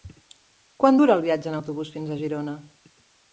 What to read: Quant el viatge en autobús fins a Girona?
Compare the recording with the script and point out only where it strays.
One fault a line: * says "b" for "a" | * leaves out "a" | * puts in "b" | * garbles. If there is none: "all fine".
* puts in "dura"